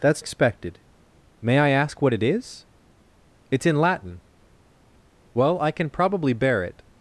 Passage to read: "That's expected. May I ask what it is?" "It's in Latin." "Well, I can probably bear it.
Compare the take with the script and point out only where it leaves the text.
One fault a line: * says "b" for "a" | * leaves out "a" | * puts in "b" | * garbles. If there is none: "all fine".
all fine